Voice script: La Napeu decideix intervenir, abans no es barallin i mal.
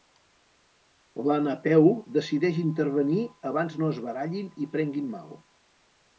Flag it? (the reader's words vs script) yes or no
yes